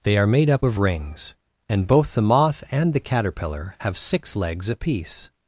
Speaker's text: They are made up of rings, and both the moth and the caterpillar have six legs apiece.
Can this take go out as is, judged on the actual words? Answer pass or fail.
pass